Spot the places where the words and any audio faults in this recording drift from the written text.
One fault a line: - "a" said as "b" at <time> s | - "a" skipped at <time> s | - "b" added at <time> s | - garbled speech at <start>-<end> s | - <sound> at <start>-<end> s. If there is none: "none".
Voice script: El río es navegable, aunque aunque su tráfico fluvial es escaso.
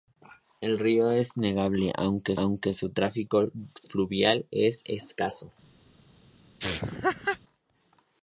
- laugh at 6.6-7.4 s